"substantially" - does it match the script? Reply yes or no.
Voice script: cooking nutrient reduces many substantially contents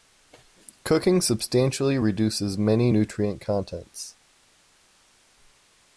no